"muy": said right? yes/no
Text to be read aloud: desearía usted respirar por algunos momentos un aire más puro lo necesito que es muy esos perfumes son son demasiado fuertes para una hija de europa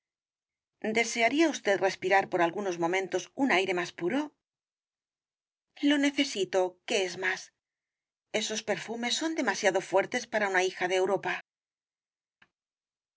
no